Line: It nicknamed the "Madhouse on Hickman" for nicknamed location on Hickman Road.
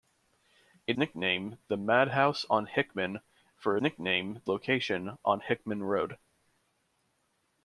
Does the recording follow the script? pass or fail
pass